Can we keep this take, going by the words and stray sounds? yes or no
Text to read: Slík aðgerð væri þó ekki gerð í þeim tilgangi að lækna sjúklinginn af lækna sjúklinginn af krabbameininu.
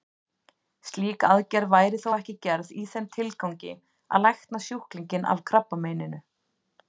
no